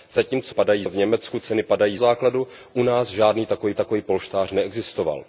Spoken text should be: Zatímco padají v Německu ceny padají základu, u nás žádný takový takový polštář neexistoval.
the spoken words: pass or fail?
pass